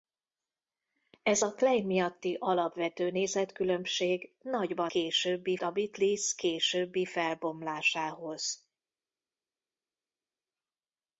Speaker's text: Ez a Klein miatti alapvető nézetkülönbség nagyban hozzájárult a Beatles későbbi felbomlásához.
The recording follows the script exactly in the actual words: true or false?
false